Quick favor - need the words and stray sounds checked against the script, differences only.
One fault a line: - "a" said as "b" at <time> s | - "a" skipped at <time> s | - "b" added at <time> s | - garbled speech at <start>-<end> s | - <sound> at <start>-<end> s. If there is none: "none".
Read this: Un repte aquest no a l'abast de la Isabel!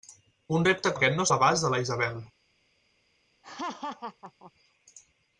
- laugh at 3.4-4.5 s